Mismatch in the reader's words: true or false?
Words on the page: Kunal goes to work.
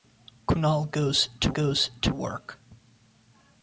true